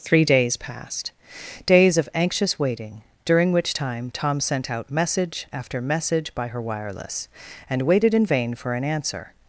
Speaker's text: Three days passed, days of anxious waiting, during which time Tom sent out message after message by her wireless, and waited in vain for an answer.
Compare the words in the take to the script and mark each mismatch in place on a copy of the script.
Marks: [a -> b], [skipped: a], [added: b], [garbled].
Three days passed, days of anxious waiting, during which time Tom sent out message after message by her wireless, and waited in vain for an answer.